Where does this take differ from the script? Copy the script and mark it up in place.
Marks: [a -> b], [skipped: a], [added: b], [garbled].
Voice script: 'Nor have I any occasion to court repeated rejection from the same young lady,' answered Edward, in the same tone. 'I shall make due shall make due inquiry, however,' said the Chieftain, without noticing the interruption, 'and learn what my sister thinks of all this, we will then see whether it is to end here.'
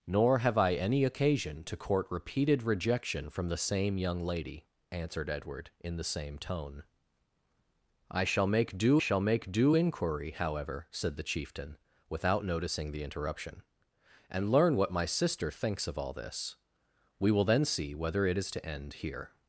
'Nor have I any occasion to court repeated rejection from the same young lady,' answered Edward, in the same tone. 'I shall make due shall make due inquiry, however,' said the Chieftain, without noticing the interruption, 'and learn what my sister thinks of all this, we will then see whether it is to end here.'